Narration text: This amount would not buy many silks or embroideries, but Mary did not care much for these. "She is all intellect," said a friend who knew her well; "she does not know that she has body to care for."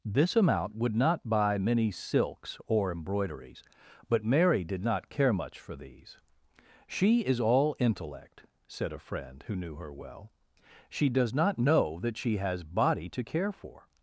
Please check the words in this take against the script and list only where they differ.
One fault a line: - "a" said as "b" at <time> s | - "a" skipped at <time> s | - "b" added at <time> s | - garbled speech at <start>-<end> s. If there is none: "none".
none